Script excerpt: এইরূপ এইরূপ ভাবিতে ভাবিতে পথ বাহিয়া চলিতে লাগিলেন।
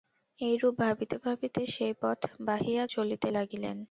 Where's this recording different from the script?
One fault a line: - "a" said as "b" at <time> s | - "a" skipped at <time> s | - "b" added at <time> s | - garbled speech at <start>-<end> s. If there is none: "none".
- "এইরূপ" said as "ভাবিতে" at 0.8 s
- "ভাবিতে" said as "সেই" at 1.7 s